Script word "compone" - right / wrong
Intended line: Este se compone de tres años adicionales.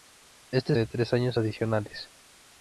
wrong